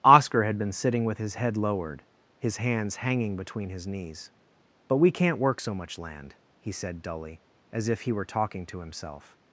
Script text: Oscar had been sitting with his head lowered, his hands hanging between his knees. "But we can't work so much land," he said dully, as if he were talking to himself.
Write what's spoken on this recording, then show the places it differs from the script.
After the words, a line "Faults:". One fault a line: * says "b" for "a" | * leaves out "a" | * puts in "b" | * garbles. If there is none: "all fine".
Oscar had been sitting with his head lowered, his hands hanging between his knees. "But we can't work so much land," he said dully, as if he were talking to himself.
Faults:
all fine